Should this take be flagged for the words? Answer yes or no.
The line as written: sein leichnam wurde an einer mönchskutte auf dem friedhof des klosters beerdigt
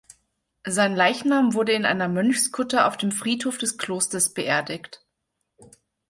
yes